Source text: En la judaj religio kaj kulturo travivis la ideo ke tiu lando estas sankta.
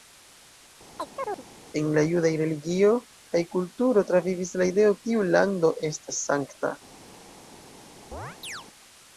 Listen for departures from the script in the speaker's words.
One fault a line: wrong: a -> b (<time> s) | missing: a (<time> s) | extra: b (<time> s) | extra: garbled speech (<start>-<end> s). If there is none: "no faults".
missing: ke (5.0 s)